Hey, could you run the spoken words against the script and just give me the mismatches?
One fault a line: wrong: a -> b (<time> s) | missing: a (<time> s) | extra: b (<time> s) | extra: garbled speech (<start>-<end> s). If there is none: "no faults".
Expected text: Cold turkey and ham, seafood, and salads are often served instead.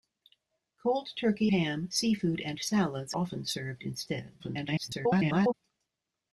missing: and (1.5 s)
missing: are (3.1 s)
extra: garbled speech (4.4-5.5 s)